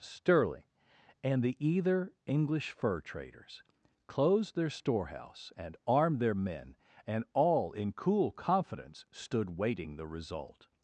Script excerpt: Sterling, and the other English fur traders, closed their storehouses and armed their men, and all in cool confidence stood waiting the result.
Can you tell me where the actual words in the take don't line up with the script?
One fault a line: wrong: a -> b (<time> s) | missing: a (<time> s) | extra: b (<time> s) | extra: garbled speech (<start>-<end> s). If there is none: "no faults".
wrong: other -> either (1.6 s)
wrong: storehouses -> storehouse (4.7 s)